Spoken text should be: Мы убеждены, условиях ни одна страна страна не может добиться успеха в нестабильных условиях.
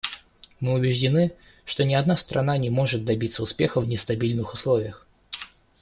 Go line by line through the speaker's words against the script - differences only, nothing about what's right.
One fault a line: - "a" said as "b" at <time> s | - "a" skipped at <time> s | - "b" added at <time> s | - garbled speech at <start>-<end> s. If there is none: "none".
- "условиях" said as "что" at 1.7 s
- "страна" skipped at 2.6 s